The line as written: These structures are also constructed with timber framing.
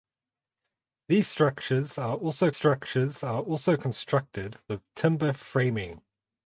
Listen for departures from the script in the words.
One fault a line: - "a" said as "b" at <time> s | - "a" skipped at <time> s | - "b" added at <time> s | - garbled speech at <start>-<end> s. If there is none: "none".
- "structures are also" added at 2.5 s